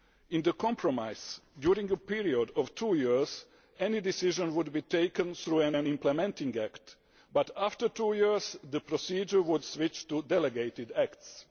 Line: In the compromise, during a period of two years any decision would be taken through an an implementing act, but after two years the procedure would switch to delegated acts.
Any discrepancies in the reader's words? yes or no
no